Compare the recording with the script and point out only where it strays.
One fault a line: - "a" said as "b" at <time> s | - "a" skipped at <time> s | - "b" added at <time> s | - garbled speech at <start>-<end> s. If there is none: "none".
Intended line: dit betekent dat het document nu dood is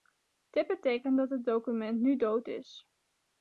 none